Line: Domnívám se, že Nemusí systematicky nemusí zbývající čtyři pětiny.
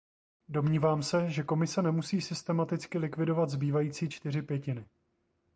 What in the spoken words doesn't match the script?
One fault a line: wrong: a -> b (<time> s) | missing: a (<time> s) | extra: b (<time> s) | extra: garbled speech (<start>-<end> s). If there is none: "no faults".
extra: Komise (1.4 s)
wrong: nemusí -> likvidovat (3.0 s)